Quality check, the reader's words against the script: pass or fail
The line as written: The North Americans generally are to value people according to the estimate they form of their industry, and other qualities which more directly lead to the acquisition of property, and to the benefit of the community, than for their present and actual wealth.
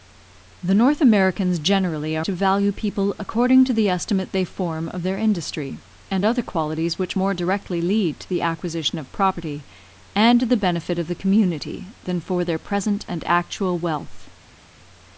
pass